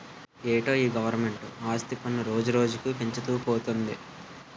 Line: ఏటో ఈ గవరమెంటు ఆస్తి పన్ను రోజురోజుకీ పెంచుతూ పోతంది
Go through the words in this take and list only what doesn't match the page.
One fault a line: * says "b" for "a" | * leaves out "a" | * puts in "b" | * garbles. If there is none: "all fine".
all fine